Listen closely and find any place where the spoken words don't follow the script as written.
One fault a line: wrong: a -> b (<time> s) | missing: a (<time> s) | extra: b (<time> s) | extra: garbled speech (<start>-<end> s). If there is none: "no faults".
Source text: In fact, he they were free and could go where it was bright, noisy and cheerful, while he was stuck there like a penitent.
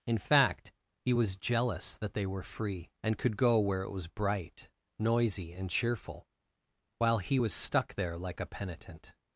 extra: was jealous that (1.1 s)